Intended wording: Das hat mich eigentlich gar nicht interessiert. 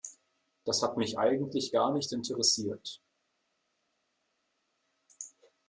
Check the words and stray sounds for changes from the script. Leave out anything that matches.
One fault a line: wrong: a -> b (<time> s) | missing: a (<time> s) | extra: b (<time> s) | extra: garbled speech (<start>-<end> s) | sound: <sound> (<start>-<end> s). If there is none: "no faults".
no faults